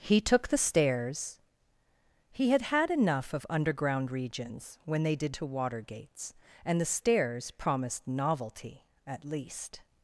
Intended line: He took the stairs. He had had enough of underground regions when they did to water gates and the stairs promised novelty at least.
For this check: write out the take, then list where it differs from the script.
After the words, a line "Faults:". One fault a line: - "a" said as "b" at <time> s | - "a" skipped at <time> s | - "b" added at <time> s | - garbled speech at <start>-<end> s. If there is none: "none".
He took the stairs. He had had enough of underground regions when they did to water gates and the stairs promised novelty at least.
Faults:
none